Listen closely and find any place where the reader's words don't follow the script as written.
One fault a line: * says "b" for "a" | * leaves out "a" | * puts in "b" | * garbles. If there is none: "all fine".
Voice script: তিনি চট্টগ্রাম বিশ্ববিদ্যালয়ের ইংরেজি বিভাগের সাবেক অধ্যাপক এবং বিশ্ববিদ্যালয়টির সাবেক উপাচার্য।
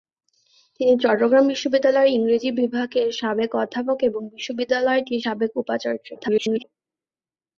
* garbles